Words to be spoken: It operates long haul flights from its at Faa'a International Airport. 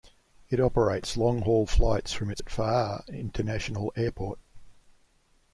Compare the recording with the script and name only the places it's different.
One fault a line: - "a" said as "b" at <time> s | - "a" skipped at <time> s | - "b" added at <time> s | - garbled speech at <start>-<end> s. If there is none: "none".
none